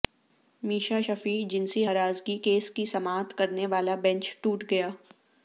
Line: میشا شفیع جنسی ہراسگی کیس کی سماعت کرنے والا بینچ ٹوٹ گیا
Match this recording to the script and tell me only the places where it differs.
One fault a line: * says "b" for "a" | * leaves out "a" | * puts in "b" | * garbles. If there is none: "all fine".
all fine